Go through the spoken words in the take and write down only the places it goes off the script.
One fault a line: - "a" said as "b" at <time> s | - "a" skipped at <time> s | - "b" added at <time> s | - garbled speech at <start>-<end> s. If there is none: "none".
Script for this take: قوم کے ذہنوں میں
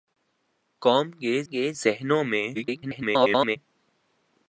- "کے" added at 1.4 s
- garbled speech at 2.5-3.6 s